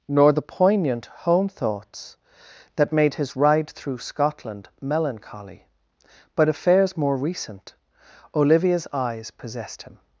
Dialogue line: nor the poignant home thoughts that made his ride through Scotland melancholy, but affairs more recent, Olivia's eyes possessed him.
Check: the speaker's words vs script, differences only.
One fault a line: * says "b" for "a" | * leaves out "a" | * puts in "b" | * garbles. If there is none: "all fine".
all fine